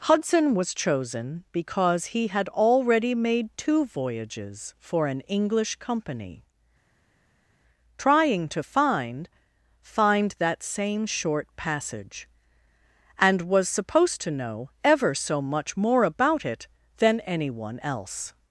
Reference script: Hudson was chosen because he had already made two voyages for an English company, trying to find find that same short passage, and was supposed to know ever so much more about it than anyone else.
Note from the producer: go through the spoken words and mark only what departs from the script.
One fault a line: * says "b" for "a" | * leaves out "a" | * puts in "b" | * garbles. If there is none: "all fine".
all fine